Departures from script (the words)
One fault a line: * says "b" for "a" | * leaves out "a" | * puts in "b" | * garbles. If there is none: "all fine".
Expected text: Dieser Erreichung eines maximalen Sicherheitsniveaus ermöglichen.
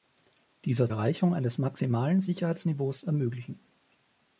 all fine